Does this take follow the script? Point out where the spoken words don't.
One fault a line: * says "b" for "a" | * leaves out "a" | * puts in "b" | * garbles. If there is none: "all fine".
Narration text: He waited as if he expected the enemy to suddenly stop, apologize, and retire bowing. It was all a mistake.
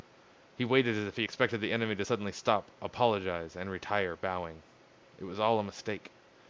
all fine